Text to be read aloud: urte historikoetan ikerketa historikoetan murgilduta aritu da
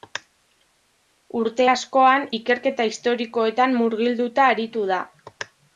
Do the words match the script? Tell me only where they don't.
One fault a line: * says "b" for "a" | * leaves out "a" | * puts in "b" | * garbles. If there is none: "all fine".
* says "askoan" for "historikoetan"